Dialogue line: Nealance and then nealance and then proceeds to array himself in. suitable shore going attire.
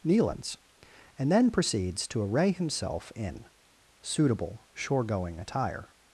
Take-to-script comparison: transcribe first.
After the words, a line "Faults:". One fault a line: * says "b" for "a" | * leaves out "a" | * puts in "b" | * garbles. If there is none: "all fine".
Nealance and then proceeds to array himself in. suitable shore going attire.
Faults:
* leaves out "nealance and then"